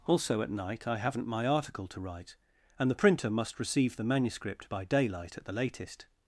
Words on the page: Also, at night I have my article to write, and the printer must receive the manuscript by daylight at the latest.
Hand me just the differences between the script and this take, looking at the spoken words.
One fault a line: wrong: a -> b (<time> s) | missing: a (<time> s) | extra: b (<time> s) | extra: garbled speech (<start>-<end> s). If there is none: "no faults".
wrong: have -> haven't (1.0 s)